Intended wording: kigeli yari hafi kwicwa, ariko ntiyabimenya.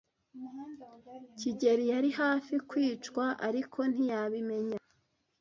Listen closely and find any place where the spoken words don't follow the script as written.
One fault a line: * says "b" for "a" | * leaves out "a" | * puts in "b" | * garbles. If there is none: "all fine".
all fine